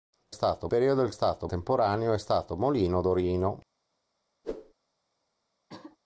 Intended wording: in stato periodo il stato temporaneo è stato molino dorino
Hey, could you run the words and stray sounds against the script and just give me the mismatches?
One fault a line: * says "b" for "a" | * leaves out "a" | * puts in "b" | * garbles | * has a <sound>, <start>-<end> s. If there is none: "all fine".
* has a whoosh, 4.4-4.7 s
* has a throat clearing, 5.7-6.0 s